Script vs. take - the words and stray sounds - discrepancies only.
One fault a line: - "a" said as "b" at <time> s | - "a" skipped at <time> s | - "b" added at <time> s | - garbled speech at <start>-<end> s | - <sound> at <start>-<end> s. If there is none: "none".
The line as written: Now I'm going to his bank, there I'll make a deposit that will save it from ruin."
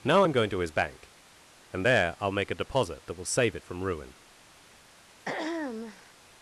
- "and" added at 1.7 s
- throat clearing at 5.2-6.1 s